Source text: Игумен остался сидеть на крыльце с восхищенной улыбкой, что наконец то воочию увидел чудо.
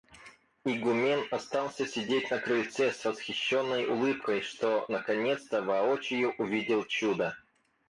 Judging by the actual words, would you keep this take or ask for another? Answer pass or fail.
pass